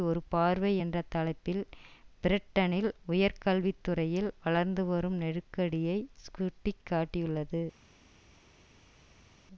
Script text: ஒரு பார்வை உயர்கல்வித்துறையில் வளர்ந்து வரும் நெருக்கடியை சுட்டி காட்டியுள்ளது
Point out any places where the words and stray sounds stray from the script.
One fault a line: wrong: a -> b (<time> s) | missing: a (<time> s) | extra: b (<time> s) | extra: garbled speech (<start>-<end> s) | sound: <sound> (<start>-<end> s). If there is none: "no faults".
extra: என்ற தலைப்பில் பிரிட்டனில் (0.8 s)